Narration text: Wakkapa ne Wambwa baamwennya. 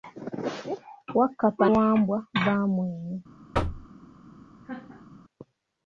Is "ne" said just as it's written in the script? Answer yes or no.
no